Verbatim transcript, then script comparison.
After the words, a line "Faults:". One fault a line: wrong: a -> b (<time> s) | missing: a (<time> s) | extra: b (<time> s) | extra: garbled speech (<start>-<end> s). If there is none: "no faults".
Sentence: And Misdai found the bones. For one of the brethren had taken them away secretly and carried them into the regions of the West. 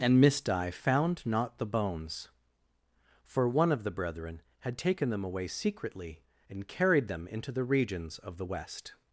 And Misdai found not the bones. For one of the brethren had taken them away secretly and carried them into the regions of the West.
Faults:
extra: not (1.3 s)